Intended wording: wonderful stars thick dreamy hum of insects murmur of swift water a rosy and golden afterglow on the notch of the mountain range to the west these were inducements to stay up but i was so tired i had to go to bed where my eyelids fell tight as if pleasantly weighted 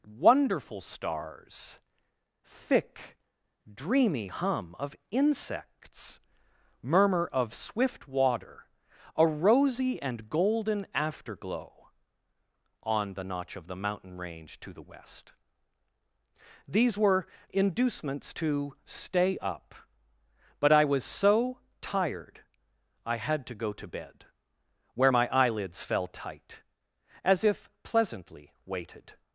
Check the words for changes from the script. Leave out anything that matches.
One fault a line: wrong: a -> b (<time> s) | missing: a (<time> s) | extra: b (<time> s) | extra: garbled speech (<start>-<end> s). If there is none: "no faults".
no faults